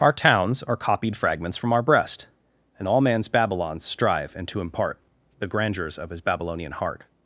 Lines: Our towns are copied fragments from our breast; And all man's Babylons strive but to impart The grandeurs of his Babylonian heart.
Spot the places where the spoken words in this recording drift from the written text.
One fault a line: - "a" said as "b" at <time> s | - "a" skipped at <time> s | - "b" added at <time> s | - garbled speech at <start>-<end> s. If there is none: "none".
- "but" said as "and" at 4.3 s